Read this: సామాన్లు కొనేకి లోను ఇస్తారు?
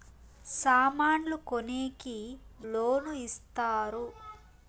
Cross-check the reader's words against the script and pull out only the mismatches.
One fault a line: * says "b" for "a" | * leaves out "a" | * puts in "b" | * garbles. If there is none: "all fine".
all fine